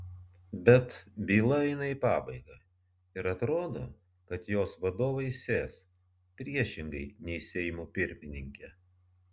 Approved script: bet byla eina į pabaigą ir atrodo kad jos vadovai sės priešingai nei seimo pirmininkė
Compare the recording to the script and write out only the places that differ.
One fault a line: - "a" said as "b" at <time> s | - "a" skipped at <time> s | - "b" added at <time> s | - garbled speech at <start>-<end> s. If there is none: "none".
none